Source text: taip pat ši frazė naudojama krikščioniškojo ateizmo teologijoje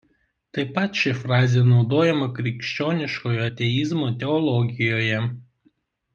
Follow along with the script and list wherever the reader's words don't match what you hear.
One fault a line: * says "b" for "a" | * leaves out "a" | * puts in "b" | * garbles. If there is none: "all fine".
all fine